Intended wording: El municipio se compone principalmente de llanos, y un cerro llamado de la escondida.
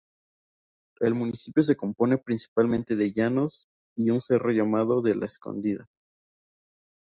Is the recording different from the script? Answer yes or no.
no